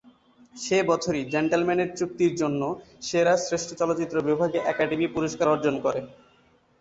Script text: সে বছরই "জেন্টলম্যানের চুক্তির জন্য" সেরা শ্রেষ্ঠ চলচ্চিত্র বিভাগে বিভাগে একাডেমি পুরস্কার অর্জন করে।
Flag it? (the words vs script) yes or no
yes